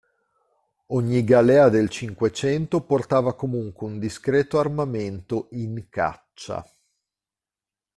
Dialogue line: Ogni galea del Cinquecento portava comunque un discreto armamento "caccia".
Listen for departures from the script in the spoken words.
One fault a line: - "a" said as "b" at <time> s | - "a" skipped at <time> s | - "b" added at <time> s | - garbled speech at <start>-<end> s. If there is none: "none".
- "in" added at 5.5 s